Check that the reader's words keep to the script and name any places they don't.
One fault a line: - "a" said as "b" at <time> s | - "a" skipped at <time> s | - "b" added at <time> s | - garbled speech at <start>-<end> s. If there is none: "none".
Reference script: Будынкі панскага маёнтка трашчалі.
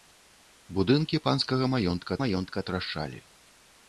- "маёнтка" added at 2.2 s